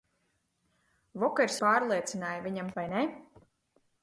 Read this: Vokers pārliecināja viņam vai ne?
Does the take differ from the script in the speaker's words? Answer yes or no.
no